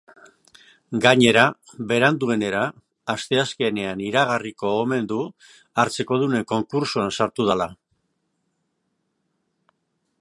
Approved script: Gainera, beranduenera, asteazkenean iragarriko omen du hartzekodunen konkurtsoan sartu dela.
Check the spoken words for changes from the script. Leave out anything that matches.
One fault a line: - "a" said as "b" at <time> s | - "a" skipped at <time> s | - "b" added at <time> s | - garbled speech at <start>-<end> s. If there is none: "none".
none